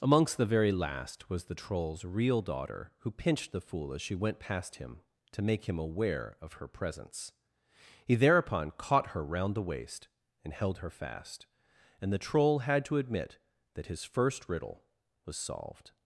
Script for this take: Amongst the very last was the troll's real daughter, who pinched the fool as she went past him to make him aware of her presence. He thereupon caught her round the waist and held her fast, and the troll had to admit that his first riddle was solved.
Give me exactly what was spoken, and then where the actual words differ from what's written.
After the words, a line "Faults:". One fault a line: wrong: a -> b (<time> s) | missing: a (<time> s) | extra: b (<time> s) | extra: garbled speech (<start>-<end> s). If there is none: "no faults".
Amongst the very last was the troll's real daughter, who pinched the fool as she went past him to make him aware of her presence. He thereupon caught her round the waist and held her fast, and the troll had to admit that his first riddle was solved.
Faults:
no faults